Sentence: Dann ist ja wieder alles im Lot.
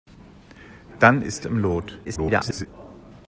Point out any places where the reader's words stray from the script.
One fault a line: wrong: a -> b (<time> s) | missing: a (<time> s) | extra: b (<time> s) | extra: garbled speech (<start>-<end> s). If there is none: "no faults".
missing: ja wieder alles (1.4 s)
extra: garbled speech (2.0-2.7 s)